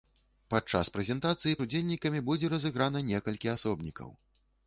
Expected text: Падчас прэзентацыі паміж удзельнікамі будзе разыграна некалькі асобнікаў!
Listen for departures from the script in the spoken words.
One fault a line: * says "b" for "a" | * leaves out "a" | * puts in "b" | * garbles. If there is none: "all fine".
* leaves out "паміж"